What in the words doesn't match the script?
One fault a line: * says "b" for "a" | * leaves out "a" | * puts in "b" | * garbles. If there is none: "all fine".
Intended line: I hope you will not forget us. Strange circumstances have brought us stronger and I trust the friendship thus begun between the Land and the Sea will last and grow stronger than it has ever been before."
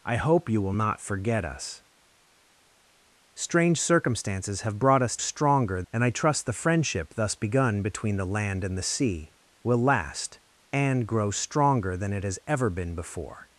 all fine